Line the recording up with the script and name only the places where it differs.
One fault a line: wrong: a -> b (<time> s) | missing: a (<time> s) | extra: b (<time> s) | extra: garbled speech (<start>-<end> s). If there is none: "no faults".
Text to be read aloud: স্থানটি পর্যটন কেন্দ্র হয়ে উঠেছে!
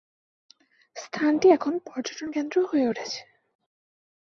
extra: এখন (1.5 s)